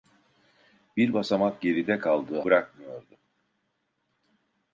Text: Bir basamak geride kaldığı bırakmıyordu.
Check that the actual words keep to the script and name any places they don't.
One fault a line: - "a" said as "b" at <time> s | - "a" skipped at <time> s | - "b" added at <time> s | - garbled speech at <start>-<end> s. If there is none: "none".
none